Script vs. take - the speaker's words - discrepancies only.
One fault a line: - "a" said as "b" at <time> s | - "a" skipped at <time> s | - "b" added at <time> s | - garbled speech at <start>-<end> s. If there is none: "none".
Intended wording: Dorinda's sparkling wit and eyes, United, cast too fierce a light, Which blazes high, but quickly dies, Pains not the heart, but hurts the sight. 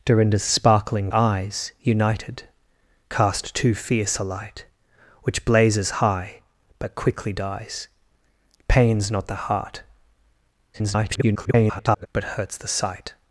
- "wit and" skipped at 1.1 s
- garbled speech at 10.7-12.1 s